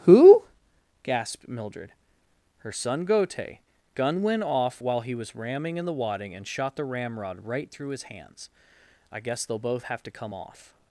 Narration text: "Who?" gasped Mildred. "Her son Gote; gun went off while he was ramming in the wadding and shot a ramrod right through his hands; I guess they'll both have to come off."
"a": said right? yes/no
no